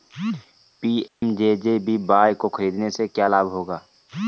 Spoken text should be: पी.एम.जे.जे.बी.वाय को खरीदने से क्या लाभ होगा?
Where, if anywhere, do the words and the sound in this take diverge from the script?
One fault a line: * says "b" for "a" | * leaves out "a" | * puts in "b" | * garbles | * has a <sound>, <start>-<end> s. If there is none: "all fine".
* has a dropout, 1.1-1.2 s